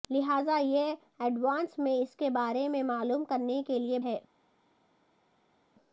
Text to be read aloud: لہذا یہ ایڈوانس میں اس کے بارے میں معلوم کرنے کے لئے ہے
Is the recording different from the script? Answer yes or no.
no